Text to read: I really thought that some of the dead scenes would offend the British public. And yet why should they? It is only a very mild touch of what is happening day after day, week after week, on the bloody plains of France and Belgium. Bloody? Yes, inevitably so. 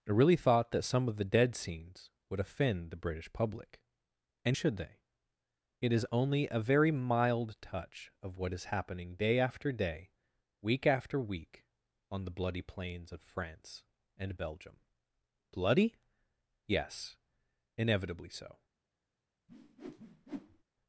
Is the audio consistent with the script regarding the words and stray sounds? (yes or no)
no